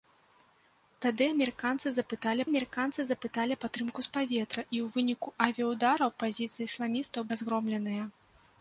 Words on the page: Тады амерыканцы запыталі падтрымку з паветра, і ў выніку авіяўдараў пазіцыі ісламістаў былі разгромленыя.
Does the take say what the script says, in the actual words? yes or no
no